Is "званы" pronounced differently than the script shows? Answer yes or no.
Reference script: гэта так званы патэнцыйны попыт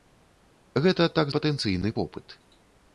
yes